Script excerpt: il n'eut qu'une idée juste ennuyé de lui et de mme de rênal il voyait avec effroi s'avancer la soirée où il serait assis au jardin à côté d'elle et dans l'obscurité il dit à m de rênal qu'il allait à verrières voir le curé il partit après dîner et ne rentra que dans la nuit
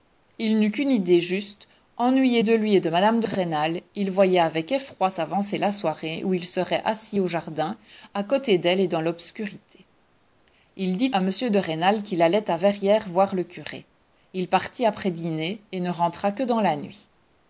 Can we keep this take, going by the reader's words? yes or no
yes